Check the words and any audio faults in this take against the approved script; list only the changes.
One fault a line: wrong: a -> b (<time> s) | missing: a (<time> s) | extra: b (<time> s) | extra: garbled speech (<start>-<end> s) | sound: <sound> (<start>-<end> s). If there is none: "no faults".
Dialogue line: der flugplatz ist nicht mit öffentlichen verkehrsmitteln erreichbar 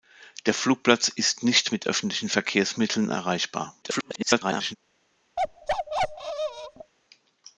extra: garbled speech (3.8-4.8 s)
sound: bark (5.4-6.9 s)